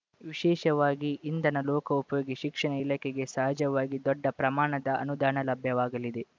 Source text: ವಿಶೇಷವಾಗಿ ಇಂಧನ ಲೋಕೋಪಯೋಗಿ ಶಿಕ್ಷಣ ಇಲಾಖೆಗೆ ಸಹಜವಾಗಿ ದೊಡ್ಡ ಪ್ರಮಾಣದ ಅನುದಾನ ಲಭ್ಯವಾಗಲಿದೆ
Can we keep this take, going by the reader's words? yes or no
yes